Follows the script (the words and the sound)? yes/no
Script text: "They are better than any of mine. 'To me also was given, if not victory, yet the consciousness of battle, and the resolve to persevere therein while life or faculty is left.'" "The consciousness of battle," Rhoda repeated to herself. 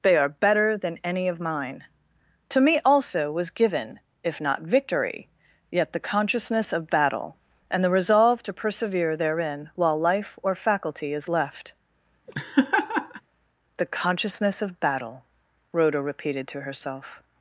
no